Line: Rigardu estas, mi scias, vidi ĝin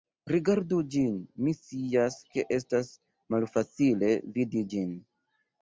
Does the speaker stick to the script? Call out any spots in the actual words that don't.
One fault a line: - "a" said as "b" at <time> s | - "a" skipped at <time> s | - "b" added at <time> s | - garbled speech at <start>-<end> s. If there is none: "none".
- "estas" said as "ĝin" at 0.9 s
- "ke estas malfacile" added at 2.3 s